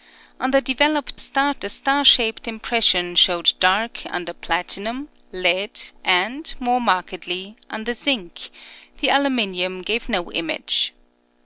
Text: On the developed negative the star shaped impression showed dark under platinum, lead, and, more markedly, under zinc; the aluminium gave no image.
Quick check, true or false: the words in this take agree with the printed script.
false